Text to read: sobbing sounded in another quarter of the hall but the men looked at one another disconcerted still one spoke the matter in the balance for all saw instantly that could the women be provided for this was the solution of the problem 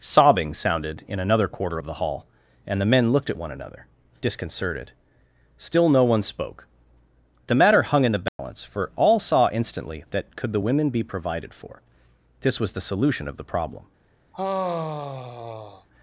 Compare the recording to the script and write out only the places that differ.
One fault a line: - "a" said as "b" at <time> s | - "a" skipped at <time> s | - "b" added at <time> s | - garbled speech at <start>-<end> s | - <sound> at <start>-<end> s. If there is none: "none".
- "but" said as "and" at 2.7 s
- "no" added at 5.9 s
- "hung" added at 7.8 s
- dropout at 8.3-8.4 s
- sigh at 14.3-15.9 s